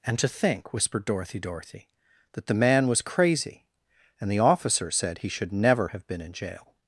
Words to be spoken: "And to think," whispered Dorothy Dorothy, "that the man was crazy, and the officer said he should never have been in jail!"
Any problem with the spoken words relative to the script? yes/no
no